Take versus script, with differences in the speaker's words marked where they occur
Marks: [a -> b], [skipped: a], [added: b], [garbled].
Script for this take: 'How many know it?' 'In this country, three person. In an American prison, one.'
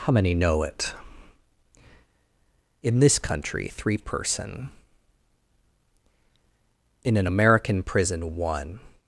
'How many know it?' 'In this country, three person. In an American prison, one.'